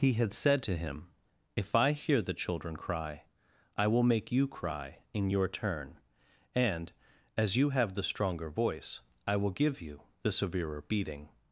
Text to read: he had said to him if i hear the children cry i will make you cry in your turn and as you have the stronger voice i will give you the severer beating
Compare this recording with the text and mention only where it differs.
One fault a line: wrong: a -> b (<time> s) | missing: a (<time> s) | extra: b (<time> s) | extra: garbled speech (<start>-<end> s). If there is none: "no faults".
no faults